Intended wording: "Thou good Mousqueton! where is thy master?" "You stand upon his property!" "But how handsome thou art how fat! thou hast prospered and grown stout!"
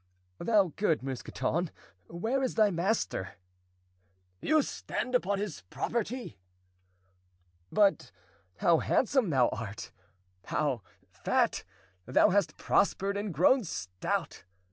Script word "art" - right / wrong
right